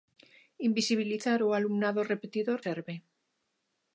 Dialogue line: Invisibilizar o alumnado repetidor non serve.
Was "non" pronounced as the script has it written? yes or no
no